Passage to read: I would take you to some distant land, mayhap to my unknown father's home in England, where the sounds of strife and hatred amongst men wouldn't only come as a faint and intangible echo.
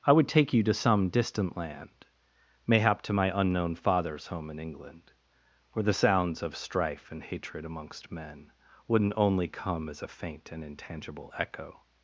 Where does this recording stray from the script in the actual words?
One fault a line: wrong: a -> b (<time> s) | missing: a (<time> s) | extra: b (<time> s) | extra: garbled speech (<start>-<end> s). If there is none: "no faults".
no faults